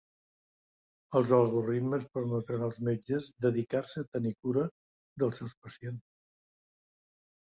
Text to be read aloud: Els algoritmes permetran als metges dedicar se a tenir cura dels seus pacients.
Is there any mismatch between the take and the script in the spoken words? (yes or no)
no